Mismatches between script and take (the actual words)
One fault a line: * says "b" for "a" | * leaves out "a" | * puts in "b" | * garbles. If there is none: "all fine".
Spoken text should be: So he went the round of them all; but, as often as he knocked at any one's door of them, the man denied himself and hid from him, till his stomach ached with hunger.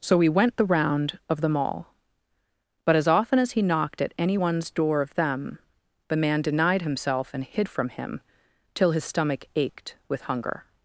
all fine